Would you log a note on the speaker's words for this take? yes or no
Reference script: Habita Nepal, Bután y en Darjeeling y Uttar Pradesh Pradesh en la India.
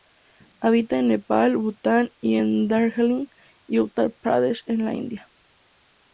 yes